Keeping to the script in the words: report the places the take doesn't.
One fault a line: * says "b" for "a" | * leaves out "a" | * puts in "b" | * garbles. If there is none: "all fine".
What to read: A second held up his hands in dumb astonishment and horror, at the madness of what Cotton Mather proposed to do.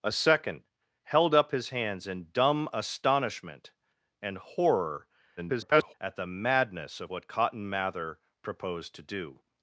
* garbles